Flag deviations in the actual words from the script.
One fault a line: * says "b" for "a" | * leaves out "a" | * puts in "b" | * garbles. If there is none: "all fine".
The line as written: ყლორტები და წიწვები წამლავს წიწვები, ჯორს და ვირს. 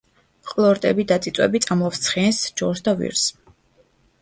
* says "ცხენს" for "წიწვები"